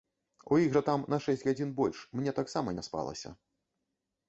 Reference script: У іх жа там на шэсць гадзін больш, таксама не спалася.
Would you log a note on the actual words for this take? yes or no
yes